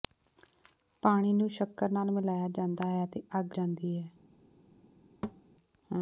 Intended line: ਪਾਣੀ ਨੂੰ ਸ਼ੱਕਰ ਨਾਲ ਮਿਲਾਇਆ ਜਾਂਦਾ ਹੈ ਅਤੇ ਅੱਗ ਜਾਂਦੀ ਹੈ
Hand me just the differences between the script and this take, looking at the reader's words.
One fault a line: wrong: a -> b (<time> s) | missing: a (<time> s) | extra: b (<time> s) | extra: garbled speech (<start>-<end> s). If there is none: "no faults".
no faults